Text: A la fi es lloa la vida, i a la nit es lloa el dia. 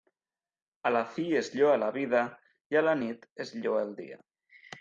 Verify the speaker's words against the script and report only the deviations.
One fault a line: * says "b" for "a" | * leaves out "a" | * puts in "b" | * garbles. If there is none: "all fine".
all fine